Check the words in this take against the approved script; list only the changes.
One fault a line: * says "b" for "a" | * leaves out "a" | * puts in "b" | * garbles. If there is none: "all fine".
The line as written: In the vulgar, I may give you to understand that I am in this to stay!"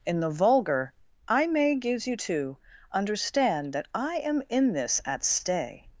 * says "gives" for "give"
* says "at" for "to"